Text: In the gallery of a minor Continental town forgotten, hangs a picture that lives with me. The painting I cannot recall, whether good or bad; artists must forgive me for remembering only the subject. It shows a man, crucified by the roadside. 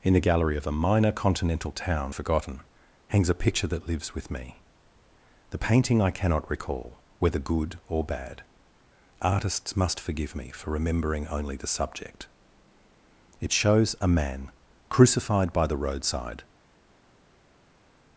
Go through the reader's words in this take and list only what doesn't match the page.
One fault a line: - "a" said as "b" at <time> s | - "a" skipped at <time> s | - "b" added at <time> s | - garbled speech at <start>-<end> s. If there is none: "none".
none